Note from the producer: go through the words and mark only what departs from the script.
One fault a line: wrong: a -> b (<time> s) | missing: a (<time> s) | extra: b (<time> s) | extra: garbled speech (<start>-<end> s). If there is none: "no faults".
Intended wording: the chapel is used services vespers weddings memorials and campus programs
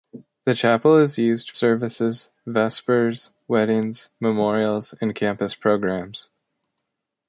no faults